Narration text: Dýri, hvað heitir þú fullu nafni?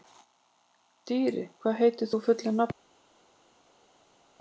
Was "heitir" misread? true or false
false